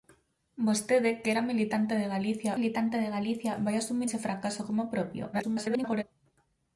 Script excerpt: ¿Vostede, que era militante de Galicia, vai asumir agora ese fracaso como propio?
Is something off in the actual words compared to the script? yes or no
yes